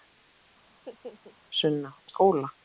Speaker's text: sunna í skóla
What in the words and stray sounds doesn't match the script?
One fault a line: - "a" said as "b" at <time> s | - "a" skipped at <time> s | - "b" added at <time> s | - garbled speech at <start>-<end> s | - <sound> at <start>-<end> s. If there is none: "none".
- laugh at 0.7-1.4 s